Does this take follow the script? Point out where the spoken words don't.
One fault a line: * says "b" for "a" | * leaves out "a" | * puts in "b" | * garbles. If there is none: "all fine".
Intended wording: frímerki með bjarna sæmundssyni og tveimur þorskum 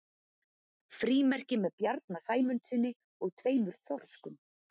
all fine